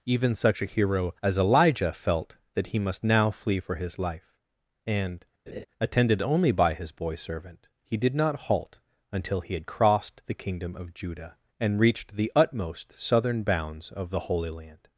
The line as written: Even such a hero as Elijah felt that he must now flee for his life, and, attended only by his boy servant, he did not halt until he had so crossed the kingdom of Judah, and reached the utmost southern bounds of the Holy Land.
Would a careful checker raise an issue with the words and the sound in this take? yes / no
yes